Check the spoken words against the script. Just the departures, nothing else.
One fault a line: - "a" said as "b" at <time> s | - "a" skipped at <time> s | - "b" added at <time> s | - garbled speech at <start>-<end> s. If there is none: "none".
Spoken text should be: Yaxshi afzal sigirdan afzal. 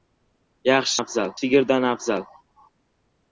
none